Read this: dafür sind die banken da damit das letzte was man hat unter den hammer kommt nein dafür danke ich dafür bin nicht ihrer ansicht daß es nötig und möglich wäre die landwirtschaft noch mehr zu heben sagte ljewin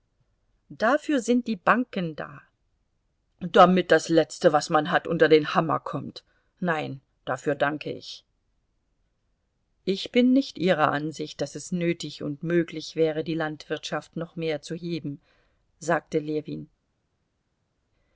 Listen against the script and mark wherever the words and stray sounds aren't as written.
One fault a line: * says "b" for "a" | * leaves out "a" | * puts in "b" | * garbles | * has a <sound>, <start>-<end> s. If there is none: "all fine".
* says "ich" for "dafür"